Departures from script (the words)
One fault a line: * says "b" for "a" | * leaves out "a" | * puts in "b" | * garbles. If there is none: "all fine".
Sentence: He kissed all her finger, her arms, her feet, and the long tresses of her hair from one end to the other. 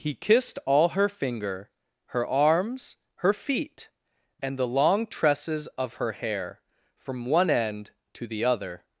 all fine